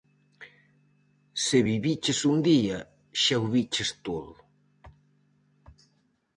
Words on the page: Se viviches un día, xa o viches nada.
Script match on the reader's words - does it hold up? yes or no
no